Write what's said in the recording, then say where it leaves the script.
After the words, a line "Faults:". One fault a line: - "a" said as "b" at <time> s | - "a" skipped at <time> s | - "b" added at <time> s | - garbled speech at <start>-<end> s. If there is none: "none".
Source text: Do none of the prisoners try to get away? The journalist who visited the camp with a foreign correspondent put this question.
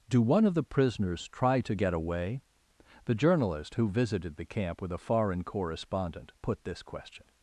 Do one of the prisoners try to get away? The journalist who visited the camp with a foreign correspondent put this question.
Faults:
- "none" said as "one" at 0.2 s